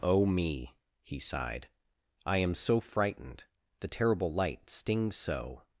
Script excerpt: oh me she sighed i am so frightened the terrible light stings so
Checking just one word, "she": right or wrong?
wrong